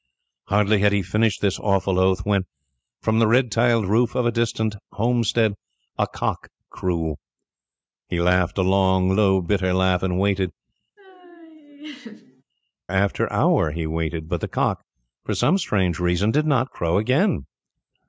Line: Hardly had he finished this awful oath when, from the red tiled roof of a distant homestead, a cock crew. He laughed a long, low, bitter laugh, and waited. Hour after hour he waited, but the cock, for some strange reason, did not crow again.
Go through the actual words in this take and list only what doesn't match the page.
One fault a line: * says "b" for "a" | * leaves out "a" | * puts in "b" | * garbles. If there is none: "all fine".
* leaves out "Hour"